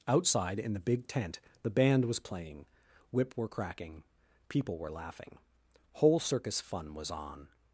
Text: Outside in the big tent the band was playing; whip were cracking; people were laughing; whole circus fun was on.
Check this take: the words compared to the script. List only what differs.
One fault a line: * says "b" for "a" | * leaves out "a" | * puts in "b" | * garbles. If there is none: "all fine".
all fine